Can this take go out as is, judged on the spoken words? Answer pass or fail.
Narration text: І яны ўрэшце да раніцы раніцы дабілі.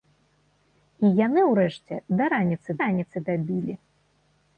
pass